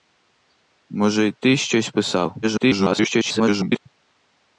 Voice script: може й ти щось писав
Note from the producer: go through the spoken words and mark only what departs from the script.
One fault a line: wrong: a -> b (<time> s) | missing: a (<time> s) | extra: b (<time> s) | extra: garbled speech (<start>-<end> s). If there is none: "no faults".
extra: garbled speech (2.4-3.9 s)